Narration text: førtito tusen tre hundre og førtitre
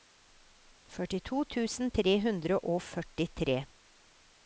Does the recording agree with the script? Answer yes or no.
yes